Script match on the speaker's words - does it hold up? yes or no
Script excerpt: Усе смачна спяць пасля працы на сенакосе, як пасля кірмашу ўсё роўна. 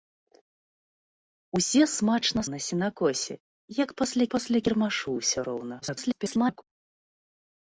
no